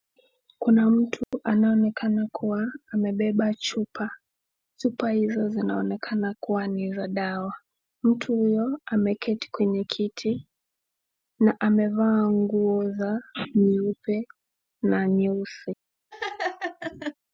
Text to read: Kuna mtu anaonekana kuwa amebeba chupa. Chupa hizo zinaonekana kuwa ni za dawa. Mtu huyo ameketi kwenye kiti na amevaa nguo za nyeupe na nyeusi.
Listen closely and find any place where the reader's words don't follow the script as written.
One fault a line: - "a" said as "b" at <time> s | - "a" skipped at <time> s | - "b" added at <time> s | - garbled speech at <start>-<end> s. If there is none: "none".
none